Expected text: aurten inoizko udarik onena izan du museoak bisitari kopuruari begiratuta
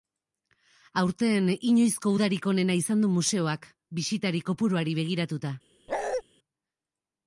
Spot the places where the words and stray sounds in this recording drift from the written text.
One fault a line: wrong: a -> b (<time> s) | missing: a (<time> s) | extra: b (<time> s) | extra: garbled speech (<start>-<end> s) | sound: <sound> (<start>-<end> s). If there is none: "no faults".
sound: bark (5.9-6.2 s)